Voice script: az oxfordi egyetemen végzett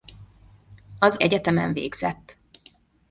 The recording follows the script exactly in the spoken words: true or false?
false